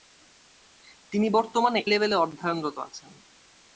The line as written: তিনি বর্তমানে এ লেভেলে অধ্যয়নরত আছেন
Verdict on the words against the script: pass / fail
fail